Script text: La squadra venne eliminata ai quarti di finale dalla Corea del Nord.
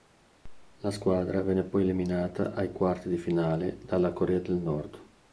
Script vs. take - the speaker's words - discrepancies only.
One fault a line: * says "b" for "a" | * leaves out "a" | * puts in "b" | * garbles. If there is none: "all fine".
* puts in "poi"